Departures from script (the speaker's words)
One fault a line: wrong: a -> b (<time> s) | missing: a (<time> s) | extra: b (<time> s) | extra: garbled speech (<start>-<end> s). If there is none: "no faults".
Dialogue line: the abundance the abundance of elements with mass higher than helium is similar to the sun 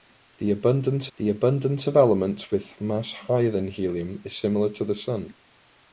no faults